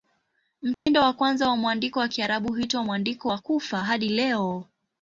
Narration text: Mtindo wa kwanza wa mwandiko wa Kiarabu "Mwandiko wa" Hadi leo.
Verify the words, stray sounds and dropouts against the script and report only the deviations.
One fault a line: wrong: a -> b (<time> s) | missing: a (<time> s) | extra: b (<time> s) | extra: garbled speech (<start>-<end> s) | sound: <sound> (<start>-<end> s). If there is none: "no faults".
sound: dropout (0.7-0.9 s)
extra: huitwa (2.5 s)
extra: Kufa (3.4 s)